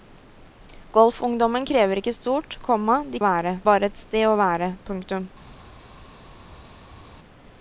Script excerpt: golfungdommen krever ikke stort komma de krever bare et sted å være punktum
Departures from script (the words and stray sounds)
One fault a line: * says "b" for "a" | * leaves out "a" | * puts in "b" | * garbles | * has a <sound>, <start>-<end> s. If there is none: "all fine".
* says "være" for "krever"